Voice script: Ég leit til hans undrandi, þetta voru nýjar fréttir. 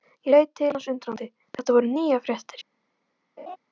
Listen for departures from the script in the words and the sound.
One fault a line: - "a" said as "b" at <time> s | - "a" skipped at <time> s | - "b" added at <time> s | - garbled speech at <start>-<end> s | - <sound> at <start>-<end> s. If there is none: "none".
- laugh at 3.4-3.6 s